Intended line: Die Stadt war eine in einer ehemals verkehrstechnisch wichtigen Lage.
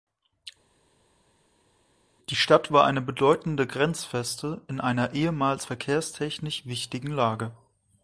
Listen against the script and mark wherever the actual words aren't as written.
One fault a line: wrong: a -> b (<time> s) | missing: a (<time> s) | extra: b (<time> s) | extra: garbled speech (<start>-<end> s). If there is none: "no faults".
extra: bedeutende Grenzfeste (3.0 s)